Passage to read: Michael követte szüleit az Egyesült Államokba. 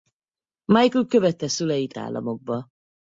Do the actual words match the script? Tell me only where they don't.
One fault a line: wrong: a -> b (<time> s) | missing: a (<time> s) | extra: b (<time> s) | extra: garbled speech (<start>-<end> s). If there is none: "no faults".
missing: az Egyesült (1.9 s)